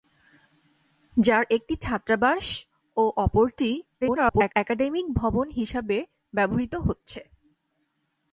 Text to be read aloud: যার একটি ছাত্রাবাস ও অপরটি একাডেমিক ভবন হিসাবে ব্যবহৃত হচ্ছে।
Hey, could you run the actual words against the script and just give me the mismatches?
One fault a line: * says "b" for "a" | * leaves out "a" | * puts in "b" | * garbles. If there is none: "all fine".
* garbles